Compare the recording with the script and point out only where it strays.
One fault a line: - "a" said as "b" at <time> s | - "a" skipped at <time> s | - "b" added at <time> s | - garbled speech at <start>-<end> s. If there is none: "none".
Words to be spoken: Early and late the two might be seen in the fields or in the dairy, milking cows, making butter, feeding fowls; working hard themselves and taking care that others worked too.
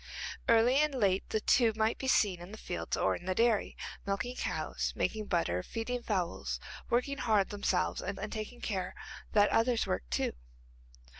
- "and" added at 8.1 s